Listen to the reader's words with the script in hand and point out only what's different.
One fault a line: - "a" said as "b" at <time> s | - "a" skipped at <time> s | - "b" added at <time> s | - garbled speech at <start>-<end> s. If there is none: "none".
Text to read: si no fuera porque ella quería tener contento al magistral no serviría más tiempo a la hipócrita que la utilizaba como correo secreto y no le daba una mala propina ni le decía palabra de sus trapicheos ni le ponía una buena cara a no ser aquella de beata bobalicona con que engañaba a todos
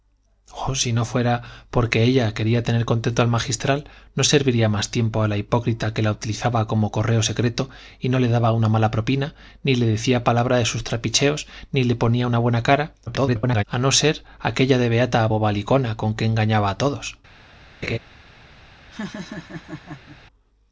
- garbled speech at 13.1-13.6 s